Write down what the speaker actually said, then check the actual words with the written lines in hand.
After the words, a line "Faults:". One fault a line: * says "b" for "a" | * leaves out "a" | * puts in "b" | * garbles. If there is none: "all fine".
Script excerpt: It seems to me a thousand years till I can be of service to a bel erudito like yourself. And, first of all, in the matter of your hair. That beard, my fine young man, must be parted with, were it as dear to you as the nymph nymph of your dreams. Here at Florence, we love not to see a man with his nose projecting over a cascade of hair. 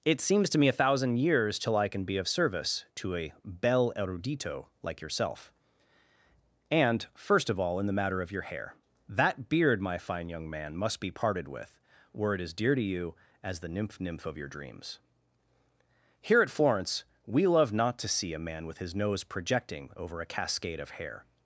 It seems to me a thousand years till I can be of service to a bel erudito like yourself. And, first of all, in the matter of your hair. That beard, my fine young man, must be parted with, were it as dear to you as the nymph nymph of your dreams. Here at Florence, we love not to see a man with his nose projecting over a cascade of hair.
Faults:
all fine